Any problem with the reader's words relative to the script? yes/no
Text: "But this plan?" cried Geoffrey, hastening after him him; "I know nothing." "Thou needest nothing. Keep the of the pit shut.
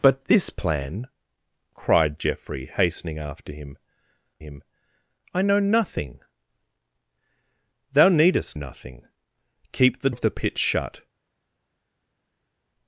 no